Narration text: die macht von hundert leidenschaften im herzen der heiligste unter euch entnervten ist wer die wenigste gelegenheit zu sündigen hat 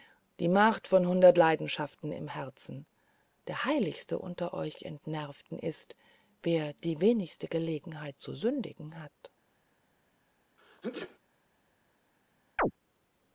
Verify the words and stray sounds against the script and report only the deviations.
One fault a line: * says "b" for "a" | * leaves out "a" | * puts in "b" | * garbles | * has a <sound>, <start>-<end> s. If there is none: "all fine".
* has a sneeze, 10.6-11.2 s
* has a chirp, 12.6-12.7 s